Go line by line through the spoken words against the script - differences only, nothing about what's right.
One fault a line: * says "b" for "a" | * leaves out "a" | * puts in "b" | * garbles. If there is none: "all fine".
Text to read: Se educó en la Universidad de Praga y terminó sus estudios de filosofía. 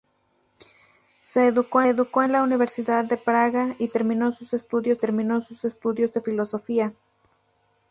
* puts in "educó"
* puts in "terminó sus estudios"